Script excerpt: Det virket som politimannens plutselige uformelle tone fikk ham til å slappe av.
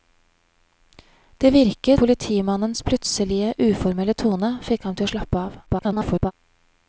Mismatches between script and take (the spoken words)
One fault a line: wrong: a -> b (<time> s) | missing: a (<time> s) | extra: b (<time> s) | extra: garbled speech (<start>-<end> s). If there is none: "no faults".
missing: som (2.0 s)
extra: garbled speech (5.7-6.3 s)